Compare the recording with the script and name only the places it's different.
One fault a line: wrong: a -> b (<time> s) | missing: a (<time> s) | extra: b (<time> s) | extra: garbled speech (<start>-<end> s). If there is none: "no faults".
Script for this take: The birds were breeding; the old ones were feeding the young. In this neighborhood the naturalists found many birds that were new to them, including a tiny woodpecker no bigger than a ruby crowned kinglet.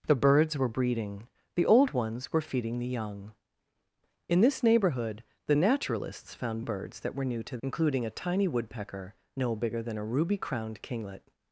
missing: many (6.6 s)
missing: them (7.6 s)